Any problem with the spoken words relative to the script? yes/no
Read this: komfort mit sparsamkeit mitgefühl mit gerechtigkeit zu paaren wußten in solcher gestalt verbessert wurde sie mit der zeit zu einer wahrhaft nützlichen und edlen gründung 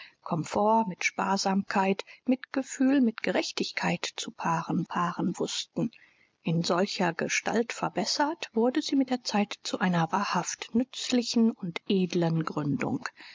yes